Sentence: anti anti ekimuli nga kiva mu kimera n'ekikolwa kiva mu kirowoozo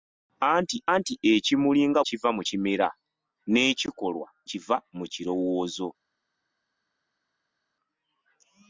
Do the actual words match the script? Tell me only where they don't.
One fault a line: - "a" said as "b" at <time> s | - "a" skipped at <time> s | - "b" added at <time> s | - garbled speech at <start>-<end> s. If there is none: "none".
none